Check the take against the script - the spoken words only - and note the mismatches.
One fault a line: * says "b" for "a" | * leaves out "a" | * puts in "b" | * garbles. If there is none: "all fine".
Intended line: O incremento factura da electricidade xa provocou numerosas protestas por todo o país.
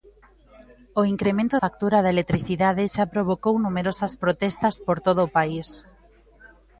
all fine